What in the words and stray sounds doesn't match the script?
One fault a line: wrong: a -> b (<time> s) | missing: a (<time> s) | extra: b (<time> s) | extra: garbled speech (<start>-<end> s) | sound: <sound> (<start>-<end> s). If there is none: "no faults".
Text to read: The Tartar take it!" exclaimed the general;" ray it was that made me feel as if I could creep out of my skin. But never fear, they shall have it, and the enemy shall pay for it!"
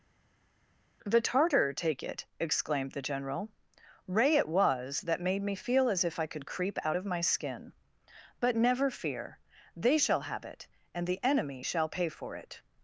no faults